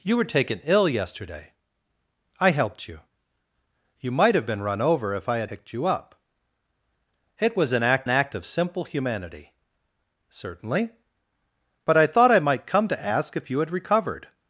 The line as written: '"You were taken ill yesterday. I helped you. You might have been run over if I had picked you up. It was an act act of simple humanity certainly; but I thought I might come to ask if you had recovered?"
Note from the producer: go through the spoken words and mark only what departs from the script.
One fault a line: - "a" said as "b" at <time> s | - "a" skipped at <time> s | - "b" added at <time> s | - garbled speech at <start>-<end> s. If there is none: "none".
none